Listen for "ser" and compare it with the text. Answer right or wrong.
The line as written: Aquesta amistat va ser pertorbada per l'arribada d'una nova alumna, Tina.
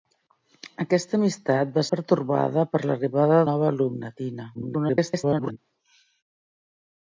wrong